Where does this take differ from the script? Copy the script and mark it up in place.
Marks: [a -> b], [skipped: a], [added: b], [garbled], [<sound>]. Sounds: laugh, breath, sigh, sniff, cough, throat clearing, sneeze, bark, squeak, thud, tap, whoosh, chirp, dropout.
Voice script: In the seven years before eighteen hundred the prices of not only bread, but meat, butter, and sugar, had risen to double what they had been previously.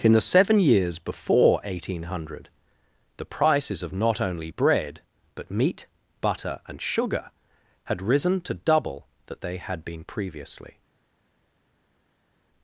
In the seven years before eighteen hundred the prices of not only bread, but meat, butter, and sugar, had risen to double [what -> that] they had been previously.